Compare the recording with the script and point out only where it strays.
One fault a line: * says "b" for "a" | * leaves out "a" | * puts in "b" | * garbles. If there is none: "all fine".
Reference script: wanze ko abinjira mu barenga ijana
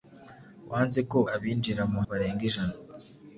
all fine